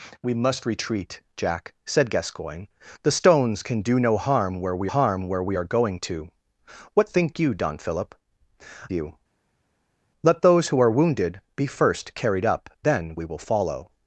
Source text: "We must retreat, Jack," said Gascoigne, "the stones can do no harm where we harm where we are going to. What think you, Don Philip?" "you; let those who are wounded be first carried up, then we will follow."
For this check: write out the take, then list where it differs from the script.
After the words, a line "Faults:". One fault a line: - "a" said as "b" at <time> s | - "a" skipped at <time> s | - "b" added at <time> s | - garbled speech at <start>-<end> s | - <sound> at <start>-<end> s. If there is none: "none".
"We must retreat, Jack," said Gascoigne, "the stones can do no harm where we harm where we are going to. What think you, Don Philip?" "you; let those who are wounded be first carried up, then we will follow."
Faults:
none